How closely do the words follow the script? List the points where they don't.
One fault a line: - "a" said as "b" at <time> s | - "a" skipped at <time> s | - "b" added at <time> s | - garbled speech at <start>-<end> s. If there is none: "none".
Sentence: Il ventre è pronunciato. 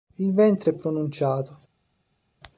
none